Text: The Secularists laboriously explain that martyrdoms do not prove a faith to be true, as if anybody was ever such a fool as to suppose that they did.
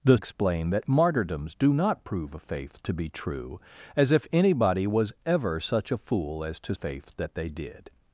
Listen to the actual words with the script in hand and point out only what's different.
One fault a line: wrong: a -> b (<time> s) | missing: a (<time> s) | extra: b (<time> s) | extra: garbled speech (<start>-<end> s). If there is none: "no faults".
missing: Secularists laboriously (0.2 s)
wrong: suppose -> faith (6.7 s)